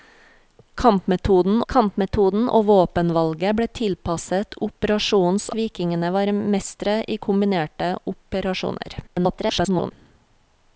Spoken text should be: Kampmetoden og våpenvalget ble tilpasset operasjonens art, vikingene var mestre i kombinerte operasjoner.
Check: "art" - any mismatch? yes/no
yes